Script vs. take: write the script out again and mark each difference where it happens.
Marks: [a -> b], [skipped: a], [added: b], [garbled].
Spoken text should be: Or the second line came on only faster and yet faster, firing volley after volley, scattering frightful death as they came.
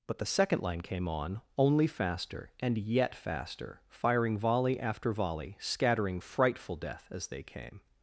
[Or -> But] the second line came on only faster and yet faster, firing volley after volley, scattering frightful death as they came.